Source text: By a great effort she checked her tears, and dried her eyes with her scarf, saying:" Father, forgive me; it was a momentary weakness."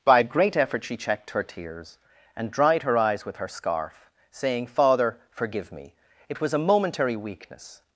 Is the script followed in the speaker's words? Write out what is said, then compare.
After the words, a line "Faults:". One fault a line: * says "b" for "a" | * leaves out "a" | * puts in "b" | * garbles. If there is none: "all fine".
By a great effort she checked her tears, and dried her eyes with her scarf, saying:" Father, forgive me; it was a momentary weakness."
Faults:
all fine